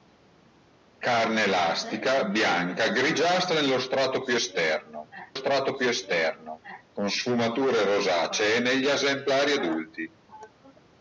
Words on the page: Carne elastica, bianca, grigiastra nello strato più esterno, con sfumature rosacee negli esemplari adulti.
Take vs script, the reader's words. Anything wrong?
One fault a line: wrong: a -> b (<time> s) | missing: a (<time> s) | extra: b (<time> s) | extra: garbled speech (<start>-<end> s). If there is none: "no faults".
extra: strato più esterno (5.3 s)